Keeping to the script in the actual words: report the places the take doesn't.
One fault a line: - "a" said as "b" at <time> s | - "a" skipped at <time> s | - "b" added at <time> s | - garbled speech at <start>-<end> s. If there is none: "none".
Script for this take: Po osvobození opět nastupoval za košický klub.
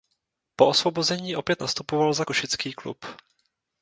none